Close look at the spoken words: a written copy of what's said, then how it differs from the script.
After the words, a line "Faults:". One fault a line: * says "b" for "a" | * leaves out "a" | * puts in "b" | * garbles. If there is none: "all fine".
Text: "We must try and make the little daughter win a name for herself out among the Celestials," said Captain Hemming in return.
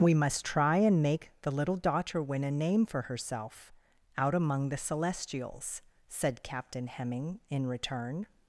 "We must try and make the little daughter win a name for herself out among the Celestials," said Captain Hemming in return.
Faults:
all fine